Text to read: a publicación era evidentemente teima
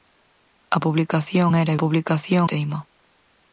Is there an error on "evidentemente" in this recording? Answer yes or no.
yes